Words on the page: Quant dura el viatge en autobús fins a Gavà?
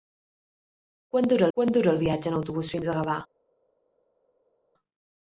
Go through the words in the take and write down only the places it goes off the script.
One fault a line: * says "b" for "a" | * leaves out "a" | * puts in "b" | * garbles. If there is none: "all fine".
* puts in "quant dura"